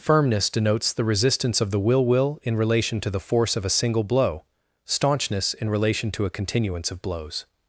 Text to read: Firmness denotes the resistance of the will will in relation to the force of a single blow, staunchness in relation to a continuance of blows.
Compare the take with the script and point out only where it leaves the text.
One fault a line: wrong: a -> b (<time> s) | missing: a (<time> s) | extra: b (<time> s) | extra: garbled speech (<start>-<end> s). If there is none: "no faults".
no faults